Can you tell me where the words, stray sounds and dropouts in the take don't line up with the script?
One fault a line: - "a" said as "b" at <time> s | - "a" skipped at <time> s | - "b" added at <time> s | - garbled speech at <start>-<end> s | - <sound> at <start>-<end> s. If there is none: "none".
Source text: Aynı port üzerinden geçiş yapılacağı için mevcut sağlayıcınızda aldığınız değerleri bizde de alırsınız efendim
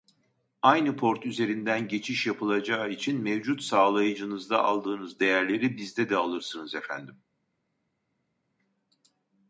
none